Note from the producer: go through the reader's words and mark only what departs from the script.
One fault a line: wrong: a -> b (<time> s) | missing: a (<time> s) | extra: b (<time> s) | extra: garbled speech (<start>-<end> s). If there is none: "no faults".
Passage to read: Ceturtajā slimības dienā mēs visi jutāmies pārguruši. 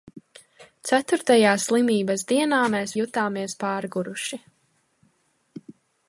missing: visi (2.9 s)